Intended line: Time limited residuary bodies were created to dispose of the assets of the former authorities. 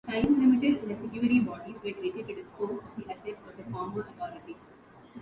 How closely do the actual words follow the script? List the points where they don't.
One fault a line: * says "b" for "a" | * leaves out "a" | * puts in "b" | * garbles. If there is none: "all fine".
all fine